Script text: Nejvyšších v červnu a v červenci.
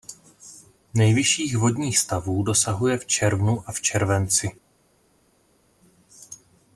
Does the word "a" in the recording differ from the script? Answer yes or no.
no